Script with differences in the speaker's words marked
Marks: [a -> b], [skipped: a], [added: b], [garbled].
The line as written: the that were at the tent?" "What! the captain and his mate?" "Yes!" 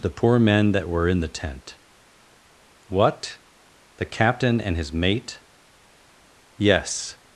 the [added: poor men] that were [at -> in] the tent?" "What! the captain and his mate?" "Yes!"